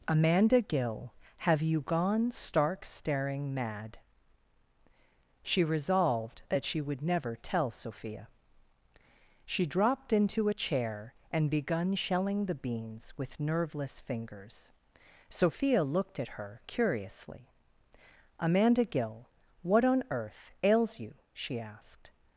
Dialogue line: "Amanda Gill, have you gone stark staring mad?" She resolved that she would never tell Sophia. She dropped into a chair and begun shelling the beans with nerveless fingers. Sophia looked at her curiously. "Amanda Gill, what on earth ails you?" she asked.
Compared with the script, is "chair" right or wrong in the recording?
right